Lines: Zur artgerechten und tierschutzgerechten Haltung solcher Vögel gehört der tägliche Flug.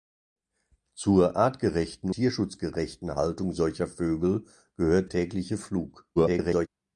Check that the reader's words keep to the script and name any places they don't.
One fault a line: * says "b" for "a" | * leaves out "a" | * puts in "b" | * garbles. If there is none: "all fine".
* leaves out "und"
* leaves out "der"
* garbles